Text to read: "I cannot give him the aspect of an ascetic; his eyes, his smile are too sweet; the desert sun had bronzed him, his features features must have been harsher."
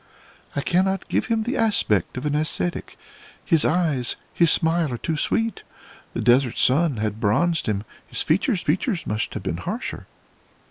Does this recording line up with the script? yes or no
yes